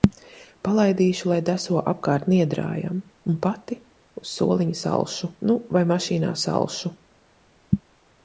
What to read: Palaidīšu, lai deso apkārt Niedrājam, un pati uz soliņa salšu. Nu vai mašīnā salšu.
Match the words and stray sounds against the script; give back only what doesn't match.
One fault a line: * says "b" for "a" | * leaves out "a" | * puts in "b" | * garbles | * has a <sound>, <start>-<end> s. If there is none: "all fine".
all fine